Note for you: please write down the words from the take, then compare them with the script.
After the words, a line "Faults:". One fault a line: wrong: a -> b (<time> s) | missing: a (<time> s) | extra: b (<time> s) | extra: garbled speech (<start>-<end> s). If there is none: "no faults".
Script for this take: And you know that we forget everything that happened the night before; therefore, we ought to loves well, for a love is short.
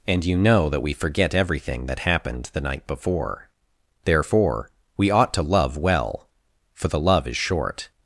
And you know that we forget everything that happened the night before; therefore, we ought to love well, for the love is short.
Faults:
wrong: loves -> love (5.4 s)
wrong: a -> the (6.9 s)